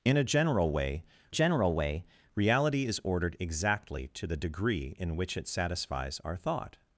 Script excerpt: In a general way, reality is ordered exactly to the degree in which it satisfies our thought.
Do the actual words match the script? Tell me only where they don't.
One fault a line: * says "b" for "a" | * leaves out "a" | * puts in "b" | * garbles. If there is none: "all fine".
* puts in "general way"